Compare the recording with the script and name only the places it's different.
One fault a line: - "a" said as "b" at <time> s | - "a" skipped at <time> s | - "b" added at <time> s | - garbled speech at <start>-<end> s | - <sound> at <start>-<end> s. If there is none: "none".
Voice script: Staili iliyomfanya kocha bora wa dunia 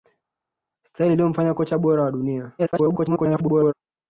- garbled speech at 2.6-3.7 s